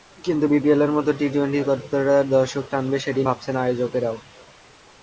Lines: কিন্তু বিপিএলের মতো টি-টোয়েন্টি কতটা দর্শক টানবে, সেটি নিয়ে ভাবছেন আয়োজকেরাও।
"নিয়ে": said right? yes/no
no